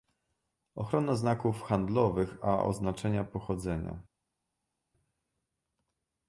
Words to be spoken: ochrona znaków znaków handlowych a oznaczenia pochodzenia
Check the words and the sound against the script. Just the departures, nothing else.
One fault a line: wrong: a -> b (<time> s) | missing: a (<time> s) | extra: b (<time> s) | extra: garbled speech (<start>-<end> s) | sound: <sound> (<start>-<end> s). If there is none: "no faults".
missing: znaków (1.6 s)